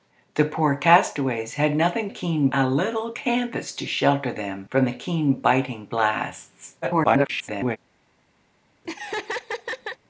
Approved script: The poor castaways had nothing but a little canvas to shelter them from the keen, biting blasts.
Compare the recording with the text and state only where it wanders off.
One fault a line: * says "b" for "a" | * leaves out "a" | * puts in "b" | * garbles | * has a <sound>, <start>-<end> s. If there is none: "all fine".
* says "keen" for "but"
* garbles
* has a laugh, 8.8-10.0 s